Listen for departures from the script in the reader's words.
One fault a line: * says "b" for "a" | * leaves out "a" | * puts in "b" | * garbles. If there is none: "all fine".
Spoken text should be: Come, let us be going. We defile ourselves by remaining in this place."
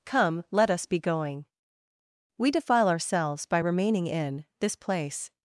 all fine